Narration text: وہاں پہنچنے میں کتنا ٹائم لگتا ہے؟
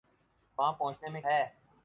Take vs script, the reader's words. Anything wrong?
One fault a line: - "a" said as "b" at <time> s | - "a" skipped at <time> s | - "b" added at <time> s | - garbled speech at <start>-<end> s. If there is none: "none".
- "کتنا ٹائم لگتا" skipped at 1.2 s